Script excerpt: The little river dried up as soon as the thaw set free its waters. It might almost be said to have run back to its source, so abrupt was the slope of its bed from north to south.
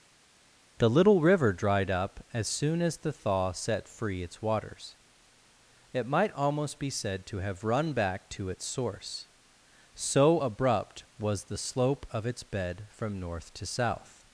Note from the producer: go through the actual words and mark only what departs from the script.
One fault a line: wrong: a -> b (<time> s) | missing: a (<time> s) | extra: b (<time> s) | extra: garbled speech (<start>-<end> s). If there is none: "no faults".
no faults